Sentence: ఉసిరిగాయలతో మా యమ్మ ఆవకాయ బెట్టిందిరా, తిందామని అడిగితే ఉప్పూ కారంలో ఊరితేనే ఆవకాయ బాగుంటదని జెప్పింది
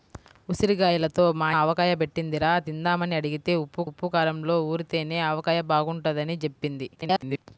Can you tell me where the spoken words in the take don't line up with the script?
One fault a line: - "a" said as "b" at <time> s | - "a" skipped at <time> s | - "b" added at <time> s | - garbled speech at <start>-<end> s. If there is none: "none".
- "యమ్మ" skipped at 1.5 s
- "ఉప్పూ" added at 3.9 s
- garbled speech at 7.0-7.4 s